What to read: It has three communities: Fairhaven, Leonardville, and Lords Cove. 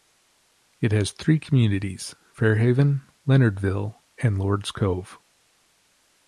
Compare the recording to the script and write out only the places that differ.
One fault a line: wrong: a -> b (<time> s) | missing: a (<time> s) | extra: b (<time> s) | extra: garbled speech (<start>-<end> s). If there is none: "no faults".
no faults